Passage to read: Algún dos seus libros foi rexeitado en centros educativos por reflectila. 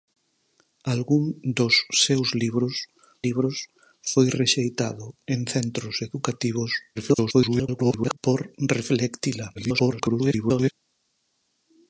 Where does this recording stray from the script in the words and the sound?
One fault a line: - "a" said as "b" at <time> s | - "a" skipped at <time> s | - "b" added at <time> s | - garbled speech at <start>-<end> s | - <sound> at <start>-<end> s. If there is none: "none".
- "libros" added at 3.3 s
- garbled speech at 7.0-8.2 s
- garbled speech at 9.5-10.7 s